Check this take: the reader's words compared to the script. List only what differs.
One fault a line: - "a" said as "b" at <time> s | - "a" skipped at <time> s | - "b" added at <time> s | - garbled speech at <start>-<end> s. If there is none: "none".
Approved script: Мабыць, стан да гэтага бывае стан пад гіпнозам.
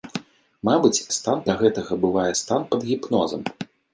none